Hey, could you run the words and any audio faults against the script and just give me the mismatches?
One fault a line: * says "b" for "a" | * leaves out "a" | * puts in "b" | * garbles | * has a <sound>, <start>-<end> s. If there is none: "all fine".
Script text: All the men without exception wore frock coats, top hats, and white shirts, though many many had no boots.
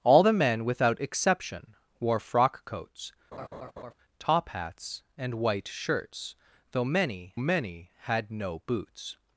* has a laugh, 3.3-3.9 s